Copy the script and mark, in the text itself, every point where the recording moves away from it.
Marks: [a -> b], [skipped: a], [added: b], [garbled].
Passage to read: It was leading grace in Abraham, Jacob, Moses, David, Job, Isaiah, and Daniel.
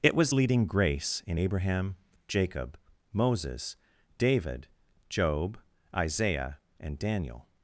It was leading grace in Abraham, Jacob, Moses, David, Job, Isaiah, and Daniel.